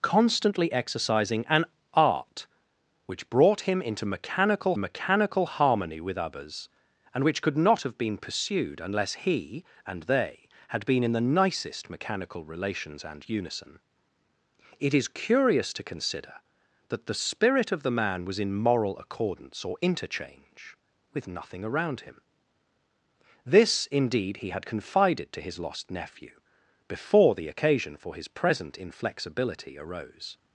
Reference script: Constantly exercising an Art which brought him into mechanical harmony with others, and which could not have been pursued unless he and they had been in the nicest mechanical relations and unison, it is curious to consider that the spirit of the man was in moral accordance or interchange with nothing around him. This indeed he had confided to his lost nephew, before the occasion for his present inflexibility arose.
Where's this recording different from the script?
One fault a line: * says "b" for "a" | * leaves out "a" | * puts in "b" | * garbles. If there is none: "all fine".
* puts in "mechanical"